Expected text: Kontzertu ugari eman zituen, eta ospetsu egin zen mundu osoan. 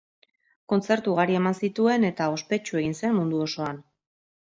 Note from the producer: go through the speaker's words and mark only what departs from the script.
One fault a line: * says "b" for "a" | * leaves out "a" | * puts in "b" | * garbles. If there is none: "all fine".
all fine